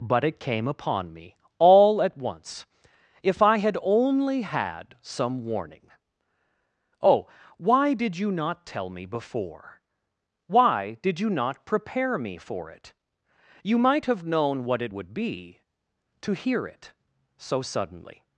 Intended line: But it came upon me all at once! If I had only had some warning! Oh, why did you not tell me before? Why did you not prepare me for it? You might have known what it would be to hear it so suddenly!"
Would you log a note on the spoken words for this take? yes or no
no